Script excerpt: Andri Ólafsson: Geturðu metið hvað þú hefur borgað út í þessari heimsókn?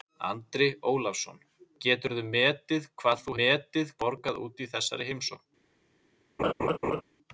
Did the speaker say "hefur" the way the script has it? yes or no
no